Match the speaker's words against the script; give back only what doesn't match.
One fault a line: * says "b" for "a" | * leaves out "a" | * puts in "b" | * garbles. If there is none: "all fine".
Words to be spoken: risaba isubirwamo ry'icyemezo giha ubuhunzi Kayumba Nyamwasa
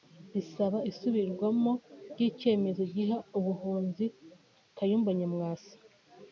all fine